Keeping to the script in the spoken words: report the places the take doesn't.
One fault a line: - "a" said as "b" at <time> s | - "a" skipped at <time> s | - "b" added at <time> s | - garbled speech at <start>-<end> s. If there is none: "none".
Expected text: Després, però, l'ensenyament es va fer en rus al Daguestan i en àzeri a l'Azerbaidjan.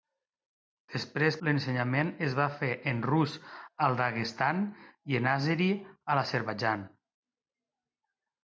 - "però" skipped at 1.4 s